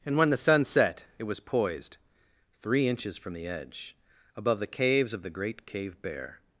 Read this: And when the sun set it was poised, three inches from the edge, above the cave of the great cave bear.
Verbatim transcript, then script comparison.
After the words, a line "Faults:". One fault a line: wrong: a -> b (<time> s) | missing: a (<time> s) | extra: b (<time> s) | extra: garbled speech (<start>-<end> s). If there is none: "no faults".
And when the sun set it was poised, three inches from the edge, above the caves of the great cave bear.
Faults:
wrong: cave -> caves (4.7 s)